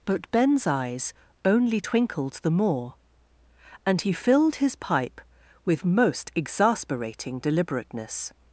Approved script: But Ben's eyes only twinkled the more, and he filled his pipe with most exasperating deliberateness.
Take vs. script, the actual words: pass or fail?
pass